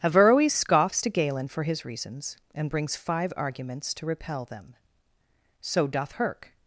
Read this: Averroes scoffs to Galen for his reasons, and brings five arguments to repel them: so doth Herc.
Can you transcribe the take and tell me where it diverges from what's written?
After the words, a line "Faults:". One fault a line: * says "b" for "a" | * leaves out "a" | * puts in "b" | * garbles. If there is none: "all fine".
Averroes scoffs to Galen for his reasons, and brings five arguments to repel them: so doth Herc.
Faults:
all fine